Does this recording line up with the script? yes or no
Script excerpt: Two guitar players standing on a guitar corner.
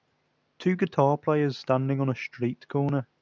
no